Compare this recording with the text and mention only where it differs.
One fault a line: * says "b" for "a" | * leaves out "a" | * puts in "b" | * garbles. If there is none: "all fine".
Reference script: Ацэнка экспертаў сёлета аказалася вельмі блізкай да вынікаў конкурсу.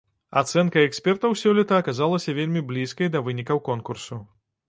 all fine